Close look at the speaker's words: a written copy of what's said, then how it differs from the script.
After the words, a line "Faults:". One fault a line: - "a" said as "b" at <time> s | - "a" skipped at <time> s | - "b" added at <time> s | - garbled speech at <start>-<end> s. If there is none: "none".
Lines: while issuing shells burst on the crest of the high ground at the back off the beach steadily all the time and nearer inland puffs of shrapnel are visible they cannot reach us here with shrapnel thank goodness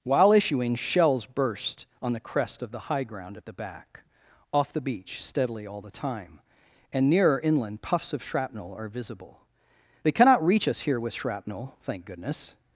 while issuing shells burst on the crest of the high ground at the back off the beach steadily all the time and nearer inland puffs of shrapnel are visible they cannot reach us here with shrapnel thank goodness
Faults:
none